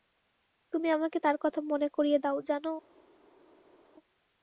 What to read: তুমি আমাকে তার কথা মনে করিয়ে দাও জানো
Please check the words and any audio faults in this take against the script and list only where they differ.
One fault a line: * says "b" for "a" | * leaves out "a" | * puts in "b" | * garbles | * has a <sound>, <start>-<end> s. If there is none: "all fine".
all fine